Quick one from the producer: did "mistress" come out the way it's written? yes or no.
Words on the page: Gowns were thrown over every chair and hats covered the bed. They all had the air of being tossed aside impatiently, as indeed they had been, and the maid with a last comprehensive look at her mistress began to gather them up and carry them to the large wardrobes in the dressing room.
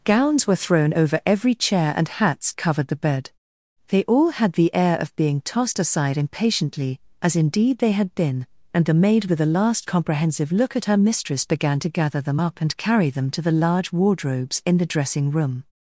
yes